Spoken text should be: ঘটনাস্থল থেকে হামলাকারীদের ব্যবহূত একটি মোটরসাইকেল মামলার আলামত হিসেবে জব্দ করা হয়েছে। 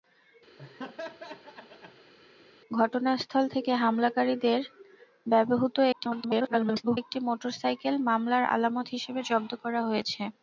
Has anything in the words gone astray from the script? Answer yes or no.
yes